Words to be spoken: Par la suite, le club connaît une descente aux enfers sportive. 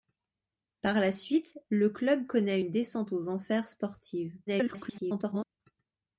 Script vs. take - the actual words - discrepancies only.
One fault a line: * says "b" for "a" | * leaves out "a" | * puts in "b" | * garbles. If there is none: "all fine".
* garbles